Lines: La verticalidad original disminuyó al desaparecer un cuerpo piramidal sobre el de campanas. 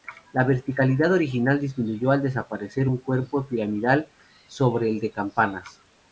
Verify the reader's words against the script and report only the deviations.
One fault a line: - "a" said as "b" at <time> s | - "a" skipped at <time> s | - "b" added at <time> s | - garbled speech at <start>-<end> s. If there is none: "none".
none